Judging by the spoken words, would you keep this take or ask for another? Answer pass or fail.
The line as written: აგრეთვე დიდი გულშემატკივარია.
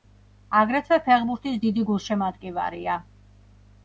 fail